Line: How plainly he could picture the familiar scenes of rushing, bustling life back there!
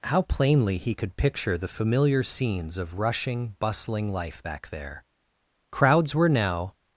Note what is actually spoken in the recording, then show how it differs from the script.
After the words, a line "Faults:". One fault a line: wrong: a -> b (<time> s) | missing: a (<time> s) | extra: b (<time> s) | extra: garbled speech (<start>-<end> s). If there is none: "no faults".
How plainly he could picture the familiar scenes of rushing, bustling life back there! Crowds were now
Faults:
extra: Crowds were now (5.7 s)